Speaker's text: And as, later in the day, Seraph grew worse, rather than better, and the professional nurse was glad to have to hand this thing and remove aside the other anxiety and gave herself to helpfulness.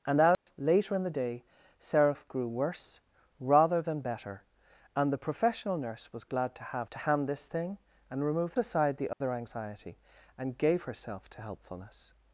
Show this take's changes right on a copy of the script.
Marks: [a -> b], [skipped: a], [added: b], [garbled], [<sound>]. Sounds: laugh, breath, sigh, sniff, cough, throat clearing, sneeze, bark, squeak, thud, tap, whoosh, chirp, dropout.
And as, [dropout] later in the day, Seraph grew worse, rather than better, and the professional nurse was glad to have to hand this thing and remove aside the other [dropout] anxiety and gave herself to helpfulness.